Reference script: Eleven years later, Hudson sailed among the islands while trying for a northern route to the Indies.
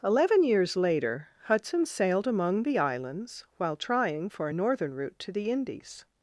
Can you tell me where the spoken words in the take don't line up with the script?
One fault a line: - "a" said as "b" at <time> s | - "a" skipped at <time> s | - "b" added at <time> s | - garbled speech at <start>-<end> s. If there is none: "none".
none